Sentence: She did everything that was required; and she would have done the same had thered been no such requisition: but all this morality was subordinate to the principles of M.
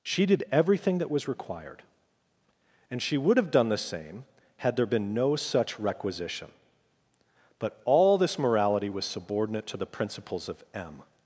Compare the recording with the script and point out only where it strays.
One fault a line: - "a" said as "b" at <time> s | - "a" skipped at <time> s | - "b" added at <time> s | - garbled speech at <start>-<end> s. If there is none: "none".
- "thered" said as "there" at 4.8 s